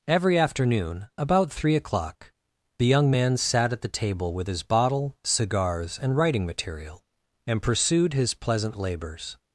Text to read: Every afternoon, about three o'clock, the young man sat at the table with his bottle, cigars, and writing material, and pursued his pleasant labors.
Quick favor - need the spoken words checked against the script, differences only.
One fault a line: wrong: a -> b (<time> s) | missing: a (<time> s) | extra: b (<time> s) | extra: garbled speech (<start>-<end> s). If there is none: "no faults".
no faults